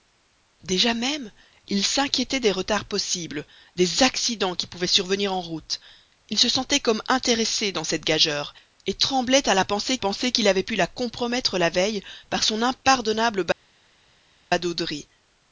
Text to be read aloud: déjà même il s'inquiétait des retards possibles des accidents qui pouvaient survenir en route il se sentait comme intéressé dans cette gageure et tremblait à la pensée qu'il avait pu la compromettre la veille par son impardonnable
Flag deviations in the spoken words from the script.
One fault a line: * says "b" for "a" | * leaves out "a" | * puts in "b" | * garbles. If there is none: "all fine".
* puts in "pensée"